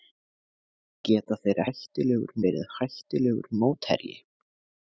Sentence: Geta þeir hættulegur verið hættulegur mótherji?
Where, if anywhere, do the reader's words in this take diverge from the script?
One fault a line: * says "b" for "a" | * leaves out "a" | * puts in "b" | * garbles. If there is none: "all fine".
all fine